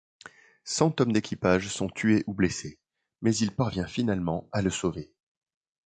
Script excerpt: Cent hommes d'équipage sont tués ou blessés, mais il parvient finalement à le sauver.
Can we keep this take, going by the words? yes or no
yes